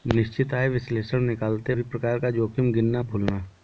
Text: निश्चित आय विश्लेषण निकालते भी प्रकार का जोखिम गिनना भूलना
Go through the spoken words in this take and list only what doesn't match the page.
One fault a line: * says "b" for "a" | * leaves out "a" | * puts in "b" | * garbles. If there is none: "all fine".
all fine